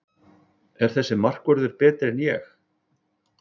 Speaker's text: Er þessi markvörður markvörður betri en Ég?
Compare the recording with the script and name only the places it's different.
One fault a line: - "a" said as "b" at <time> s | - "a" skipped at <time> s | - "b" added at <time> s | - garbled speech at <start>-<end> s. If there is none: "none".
- "markvörður" skipped at 1.8 s